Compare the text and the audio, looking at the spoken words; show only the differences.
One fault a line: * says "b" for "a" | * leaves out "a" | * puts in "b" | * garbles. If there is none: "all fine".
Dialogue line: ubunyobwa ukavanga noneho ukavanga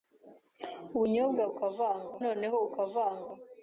all fine